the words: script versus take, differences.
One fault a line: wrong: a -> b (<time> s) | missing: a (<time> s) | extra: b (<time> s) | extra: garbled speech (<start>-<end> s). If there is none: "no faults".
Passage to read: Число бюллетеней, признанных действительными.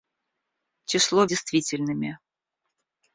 missing: бюллетеней признанных (1.3 s)